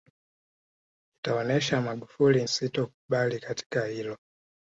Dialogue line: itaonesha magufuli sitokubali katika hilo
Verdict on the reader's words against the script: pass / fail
pass